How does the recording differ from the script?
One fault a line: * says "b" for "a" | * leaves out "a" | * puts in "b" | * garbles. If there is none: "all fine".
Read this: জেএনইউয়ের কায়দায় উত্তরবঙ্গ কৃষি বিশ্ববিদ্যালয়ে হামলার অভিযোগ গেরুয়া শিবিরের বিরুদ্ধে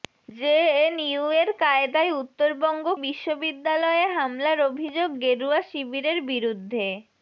* leaves out "কৃষি"